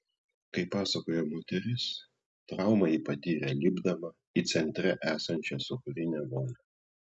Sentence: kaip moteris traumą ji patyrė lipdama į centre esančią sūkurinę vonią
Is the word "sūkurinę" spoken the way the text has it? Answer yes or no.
yes